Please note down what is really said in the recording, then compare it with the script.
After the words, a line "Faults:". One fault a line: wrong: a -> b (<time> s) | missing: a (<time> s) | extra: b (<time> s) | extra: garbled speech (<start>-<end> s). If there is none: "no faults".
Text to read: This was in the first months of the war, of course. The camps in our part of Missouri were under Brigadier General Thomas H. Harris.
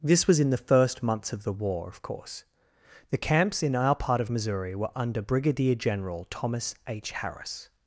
This was in the first months of the war, of course. The camps in our part of Missouri were under Brigadier General Thomas H. Harris.
Faults:
no faults